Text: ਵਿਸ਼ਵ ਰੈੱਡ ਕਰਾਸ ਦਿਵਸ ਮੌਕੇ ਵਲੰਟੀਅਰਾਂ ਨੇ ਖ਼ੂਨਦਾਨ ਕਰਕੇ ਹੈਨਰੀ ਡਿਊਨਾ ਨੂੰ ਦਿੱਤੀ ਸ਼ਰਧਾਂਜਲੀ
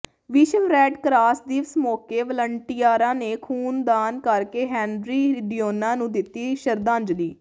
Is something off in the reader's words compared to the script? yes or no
no